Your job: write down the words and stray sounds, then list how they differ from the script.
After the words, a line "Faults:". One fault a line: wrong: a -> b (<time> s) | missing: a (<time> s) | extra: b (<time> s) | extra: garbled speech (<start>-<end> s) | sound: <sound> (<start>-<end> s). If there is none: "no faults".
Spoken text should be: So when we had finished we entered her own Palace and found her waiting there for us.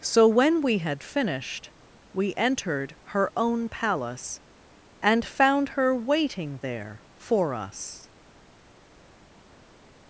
So when we had finished we entered her own Palace and found her waiting there for us.
Faults:
no faults